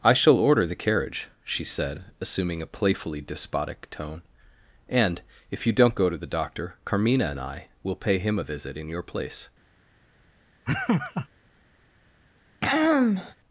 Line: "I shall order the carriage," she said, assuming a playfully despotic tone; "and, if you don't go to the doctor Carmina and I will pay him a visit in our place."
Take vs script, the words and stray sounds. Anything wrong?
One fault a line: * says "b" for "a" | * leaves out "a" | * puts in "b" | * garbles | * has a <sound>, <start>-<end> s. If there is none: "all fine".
* says "your" for "our"
* has a laugh, 10.7-11.3 s
* has a throat clearing, 12.6-13.4 s